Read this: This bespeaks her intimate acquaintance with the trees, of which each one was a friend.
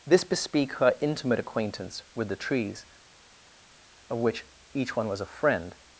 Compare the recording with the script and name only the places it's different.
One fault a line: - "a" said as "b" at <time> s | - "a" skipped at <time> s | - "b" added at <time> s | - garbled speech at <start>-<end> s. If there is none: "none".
- "bespeaks" said as "bespeak" at 0.2 s